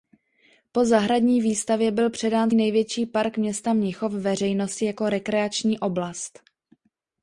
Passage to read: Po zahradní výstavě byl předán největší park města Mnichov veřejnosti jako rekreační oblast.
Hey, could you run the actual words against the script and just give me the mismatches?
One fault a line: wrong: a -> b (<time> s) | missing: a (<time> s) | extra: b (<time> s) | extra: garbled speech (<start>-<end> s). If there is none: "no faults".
no faults